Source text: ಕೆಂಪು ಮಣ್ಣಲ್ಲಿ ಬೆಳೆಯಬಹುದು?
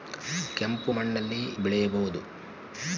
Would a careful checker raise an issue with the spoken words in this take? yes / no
no